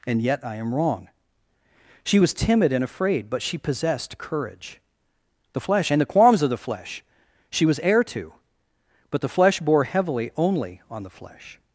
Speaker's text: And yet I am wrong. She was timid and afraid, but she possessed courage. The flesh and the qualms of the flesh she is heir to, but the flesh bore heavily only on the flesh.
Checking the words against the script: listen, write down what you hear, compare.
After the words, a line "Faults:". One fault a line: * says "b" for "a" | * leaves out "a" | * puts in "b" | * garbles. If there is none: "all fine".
And yet I am wrong. She was timid and afraid, but she possessed courage. The flesh and the qualms of the flesh she was heir to, but the flesh bore heavily only on the flesh.
Faults:
* says "was" for "is"